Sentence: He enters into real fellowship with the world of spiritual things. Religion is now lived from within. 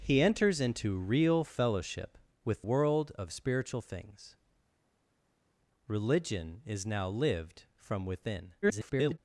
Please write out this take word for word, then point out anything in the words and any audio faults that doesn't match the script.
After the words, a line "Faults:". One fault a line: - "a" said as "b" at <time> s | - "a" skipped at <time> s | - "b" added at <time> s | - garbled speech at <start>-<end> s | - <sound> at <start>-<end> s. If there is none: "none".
He enters into real fellowship with world of spiritual things. Religion is now lived from within. [garbled]
Faults:
- "the" skipped at 2.6 s
- garbled speech at 8.6-9.2 s